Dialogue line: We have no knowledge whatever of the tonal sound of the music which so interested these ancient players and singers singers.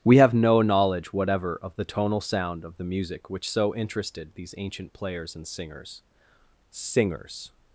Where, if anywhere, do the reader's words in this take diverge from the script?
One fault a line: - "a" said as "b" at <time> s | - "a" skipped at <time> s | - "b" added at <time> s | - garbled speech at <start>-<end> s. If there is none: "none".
none